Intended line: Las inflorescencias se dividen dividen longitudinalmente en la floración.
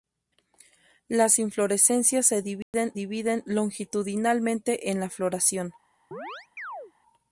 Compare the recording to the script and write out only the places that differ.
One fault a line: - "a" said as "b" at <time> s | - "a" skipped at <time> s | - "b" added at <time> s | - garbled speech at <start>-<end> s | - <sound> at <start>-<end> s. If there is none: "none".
- dropout at 2.6-2.7 s
- chirp at 6.1-6.9 s